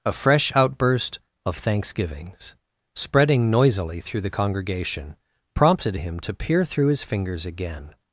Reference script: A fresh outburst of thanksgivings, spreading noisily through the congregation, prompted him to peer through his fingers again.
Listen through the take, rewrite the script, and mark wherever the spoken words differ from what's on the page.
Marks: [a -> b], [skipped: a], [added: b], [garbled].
A fresh outburst of thanksgivings, spreading noisily through the congregation, prompted him to peer through his fingers again.